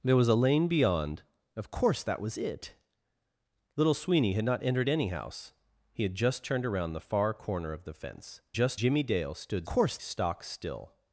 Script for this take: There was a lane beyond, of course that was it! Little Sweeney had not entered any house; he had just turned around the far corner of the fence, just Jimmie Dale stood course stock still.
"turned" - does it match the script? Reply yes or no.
yes